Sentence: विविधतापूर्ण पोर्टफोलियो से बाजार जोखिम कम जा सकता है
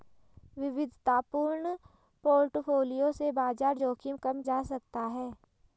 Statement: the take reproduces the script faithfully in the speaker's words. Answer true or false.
true